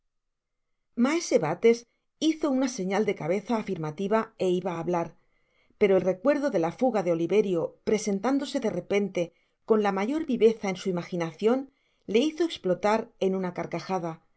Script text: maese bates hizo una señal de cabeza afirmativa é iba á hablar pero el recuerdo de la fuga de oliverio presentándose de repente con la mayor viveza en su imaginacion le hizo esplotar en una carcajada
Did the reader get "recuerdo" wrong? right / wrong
right